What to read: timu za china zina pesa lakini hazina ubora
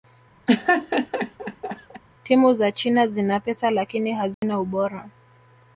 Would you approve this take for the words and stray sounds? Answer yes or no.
no